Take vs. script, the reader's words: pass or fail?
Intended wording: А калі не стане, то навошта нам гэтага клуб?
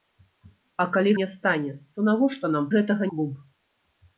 pass